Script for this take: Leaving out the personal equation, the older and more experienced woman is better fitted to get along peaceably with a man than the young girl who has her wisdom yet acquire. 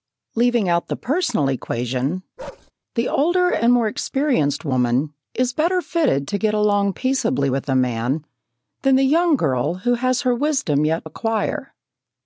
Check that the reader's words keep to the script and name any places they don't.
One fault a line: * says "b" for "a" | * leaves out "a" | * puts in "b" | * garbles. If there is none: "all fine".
all fine